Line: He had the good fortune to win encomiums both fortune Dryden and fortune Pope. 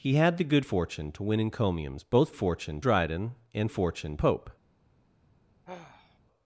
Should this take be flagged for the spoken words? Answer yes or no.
no